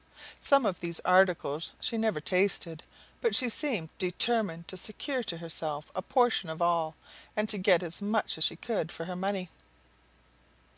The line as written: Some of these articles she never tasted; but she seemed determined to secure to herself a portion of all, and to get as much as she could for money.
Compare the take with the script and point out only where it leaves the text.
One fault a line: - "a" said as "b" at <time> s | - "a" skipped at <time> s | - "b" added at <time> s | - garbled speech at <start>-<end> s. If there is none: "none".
- "her" added at 9.1 s